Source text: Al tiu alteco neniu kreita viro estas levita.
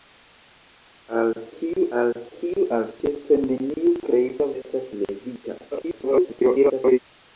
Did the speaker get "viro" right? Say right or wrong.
wrong